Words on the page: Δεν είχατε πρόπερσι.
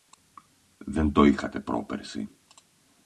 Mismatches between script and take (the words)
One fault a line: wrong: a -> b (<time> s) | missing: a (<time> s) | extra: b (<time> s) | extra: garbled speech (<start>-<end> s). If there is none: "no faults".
extra: το (1.1 s)